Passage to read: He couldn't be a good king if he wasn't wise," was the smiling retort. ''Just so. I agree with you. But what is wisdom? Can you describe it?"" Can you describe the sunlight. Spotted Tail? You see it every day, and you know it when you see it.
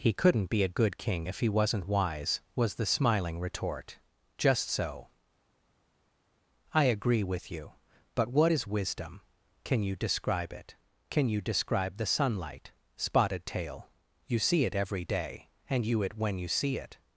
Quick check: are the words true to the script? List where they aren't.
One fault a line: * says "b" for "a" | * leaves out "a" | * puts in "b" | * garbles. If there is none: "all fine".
* leaves out "know"